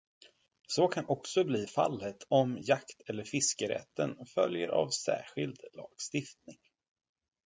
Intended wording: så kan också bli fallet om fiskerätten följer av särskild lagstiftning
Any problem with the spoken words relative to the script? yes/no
yes